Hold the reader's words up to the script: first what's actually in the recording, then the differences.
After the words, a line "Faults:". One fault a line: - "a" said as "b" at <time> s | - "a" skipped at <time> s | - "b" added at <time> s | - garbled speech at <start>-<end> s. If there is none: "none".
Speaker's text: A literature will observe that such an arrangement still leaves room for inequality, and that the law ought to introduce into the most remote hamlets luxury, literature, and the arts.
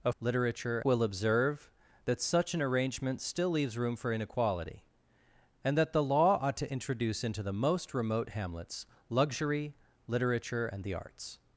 A literature will observe that such an arrangement still leaves room for inequality, and that the law ought to introduce into the most remote hamlets luxury, literature, and the arts.
Faults:
none